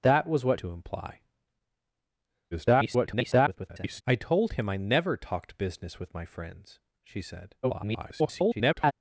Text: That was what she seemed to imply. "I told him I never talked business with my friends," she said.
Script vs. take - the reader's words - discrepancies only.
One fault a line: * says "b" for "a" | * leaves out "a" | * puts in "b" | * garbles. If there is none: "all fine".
* leaves out "she seemed"
* garbles
* garbles